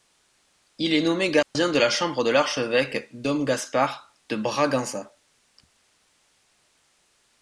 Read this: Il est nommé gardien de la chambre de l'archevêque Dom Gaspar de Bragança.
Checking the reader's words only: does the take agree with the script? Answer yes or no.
yes